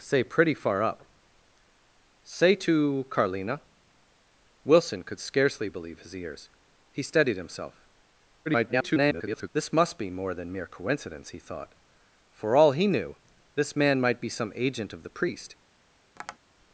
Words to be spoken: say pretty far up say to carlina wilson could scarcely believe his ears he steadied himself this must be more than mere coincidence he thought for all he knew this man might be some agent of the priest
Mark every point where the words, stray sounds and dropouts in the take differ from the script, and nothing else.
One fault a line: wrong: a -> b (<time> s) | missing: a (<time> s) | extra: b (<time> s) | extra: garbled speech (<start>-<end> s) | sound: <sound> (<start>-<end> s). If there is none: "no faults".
extra: garbled speech (8.5-9.5 s)
sound: tap (16.2-16.4 s)